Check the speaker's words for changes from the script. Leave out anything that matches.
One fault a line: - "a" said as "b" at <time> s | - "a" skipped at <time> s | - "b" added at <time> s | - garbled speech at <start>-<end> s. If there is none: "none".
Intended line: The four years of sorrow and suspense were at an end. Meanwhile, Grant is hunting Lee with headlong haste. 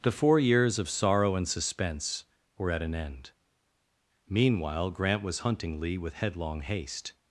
- "is" said as "was" at 5.2 s